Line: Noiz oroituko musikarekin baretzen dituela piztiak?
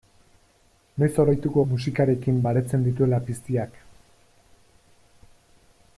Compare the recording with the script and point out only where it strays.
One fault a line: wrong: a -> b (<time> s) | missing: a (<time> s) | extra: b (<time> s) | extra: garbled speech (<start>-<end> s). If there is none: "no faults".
no faults